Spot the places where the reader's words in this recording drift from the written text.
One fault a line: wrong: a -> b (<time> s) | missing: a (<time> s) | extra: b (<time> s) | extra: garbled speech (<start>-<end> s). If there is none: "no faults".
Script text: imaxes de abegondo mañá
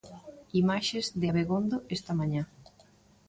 extra: esta (2.0 s)